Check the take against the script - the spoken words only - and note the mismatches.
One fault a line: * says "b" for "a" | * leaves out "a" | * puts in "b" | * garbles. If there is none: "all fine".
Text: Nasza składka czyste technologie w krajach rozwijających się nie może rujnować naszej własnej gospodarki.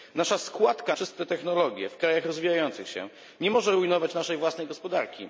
all fine